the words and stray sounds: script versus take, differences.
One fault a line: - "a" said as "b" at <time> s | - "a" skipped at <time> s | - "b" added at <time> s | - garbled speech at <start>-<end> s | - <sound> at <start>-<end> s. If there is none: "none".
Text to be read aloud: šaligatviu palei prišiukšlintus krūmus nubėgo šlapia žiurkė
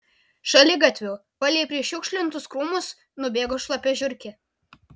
none